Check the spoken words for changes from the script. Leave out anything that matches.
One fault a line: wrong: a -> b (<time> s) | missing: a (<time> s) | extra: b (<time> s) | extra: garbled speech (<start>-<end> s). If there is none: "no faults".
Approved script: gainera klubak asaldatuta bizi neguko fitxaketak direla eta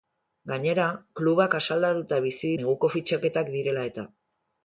no faults